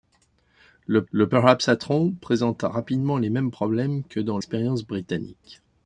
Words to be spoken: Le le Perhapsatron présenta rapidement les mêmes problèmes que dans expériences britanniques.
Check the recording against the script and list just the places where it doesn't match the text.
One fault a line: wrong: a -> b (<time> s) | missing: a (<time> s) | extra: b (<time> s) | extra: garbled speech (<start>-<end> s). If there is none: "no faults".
no faults